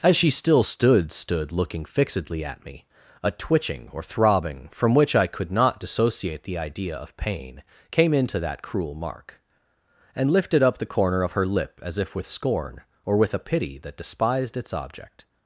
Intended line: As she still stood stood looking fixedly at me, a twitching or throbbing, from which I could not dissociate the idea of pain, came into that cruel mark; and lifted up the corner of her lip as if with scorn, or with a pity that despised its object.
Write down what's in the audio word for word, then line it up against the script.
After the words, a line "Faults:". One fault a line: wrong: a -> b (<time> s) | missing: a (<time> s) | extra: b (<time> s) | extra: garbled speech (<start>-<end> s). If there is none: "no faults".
As she still stood stood looking fixedly at me, a twitching or throbbing, from which I could not dissociate the idea of pain, came into that cruel mark; and lifted up the corner of her lip as if with scorn, or with a pity that despised its object.
Faults:
no faults